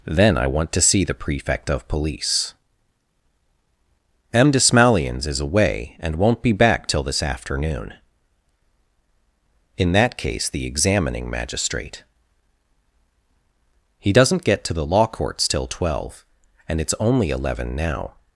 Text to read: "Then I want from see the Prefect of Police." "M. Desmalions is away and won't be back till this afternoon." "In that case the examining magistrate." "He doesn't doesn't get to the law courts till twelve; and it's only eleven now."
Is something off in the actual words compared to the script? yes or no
yes